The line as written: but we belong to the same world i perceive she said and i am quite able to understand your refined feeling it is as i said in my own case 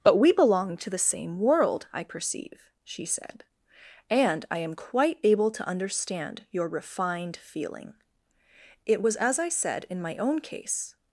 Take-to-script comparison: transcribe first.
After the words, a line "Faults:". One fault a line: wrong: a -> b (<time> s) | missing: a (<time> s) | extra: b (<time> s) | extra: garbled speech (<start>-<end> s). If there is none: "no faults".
but we belong to the same world i perceive she said and i am quite able to understand your refined feeling it was as i said in my own case
Faults:
wrong: is -> was (9.0 s)